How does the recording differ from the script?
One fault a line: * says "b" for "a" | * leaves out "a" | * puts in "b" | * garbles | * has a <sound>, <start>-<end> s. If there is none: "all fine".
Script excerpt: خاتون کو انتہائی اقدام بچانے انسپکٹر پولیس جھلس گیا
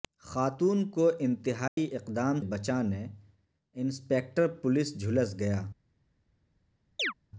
* has a dropout, 1.7-1.8 s
* has a chirp, 7.0-7.1 s